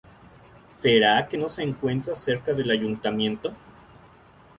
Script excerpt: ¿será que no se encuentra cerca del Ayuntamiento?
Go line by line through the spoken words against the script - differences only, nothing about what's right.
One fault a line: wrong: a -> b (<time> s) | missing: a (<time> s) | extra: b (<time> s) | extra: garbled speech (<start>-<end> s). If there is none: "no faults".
no faults